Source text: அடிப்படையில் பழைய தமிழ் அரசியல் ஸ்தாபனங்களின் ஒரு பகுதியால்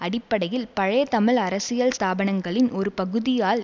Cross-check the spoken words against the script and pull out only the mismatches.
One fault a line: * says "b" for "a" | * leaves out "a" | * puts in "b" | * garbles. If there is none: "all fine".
all fine